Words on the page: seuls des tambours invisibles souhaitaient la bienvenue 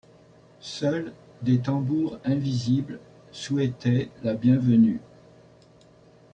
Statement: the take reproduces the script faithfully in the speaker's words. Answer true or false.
true